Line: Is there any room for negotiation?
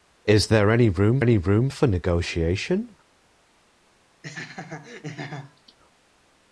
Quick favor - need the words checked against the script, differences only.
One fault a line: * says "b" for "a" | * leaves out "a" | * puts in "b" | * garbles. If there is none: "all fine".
* puts in "any room"